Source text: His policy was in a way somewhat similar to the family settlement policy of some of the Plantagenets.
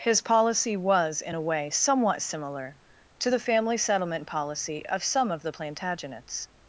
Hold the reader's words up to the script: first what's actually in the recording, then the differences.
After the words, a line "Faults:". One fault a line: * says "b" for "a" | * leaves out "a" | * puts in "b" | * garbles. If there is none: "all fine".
His policy was in a way somewhat similar to the family settlement policy of some of the Plantagenets.
Faults:
all fine